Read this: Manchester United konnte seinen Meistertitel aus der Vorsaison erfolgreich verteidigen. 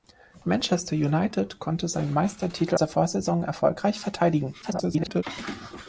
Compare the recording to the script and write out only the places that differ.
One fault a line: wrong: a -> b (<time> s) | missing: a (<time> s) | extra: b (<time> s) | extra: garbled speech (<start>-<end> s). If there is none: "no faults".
missing: aus (2.8 s)
extra: garbled speech (4.6-5.2 s)